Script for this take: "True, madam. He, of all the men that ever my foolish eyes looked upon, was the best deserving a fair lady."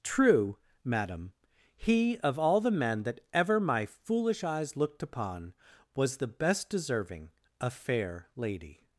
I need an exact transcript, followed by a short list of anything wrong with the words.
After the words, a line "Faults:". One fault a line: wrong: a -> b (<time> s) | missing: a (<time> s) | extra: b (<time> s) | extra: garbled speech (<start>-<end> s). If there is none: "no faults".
"True, madam. He, of all the men that ever my foolish eyes looked upon, was the best deserving a fair lady."
Faults:
no faults